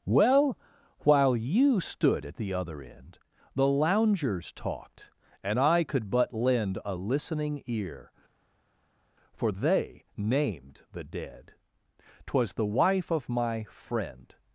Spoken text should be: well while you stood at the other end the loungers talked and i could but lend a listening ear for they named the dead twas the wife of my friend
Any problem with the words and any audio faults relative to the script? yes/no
no